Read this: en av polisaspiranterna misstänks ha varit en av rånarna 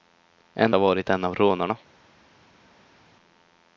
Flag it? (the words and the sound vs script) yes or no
yes